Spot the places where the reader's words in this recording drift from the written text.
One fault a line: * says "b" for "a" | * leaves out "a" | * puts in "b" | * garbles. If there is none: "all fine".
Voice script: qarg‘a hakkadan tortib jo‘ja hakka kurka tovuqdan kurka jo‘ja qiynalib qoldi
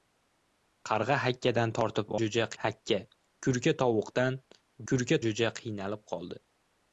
all fine